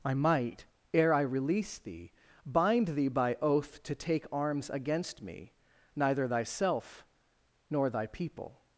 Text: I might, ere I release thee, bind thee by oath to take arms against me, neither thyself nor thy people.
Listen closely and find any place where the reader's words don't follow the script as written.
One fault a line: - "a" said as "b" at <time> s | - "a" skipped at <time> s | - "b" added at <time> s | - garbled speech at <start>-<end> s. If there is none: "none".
none